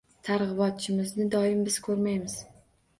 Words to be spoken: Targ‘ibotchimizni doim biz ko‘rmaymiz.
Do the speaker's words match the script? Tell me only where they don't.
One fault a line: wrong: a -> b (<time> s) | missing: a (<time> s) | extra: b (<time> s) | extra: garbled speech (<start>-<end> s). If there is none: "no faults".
no faults